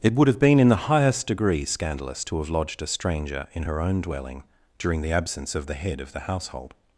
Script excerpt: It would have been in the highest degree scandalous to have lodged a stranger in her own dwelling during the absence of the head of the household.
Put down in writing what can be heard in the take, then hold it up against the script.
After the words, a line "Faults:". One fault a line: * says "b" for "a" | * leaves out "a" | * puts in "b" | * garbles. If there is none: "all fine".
It would have been in the highest degree scandalous to have lodged a stranger in her own dwelling during the absence of the head of the household.
Faults:
all fine